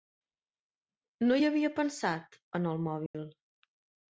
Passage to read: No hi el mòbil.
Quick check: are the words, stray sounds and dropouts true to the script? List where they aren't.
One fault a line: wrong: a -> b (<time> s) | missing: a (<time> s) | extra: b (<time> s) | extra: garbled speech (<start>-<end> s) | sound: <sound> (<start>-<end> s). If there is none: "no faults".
extra: havia pensat en (1.5 s)
sound: dropout (3.1-3.1 s)